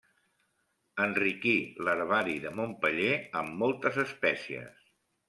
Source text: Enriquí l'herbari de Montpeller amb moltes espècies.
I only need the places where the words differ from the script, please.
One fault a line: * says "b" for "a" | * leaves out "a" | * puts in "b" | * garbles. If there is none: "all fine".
all fine